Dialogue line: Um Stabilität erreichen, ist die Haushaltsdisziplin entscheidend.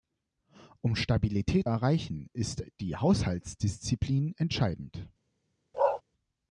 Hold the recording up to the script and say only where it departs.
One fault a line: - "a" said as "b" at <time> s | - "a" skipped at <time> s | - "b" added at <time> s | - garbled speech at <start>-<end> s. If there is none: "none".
none